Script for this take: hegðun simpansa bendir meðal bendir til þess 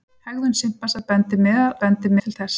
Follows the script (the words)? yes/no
yes